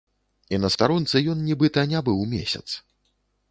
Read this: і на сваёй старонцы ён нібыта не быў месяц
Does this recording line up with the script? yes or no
no